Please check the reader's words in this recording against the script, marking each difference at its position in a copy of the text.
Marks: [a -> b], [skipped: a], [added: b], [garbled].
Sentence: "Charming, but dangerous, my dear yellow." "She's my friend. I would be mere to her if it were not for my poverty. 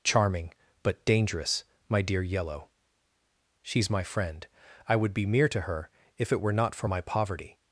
"Charming, but dangerous, my dear yellow." "She's my friend. I would be mere to her if it were not for my poverty.